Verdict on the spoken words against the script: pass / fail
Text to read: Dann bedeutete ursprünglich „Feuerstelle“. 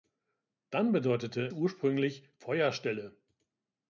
pass